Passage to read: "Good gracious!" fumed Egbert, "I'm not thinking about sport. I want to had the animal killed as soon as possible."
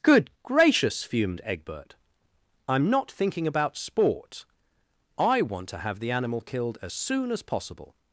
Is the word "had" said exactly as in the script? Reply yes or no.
no